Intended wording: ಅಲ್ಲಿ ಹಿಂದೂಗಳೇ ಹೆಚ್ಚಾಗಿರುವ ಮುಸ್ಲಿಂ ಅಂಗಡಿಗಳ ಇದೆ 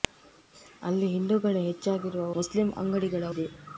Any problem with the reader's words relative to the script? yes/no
no